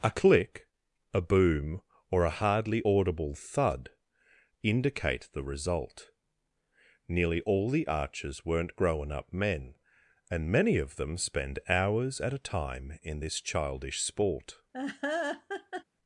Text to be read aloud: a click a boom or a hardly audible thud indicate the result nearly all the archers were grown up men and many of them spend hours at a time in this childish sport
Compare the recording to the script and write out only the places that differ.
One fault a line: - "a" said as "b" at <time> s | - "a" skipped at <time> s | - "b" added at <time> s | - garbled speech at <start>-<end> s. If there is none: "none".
- "were" said as "weren't" at 8.4 s